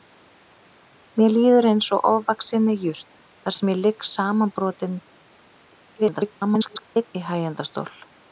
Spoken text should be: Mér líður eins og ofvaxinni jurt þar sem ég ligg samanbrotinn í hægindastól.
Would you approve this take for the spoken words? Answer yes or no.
no